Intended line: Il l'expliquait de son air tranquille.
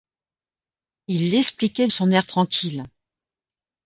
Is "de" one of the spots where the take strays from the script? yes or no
yes